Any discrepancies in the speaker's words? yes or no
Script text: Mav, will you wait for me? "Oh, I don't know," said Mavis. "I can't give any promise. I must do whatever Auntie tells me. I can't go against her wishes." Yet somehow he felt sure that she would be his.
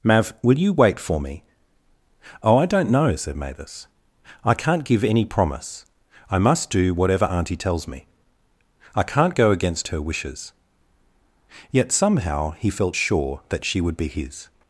no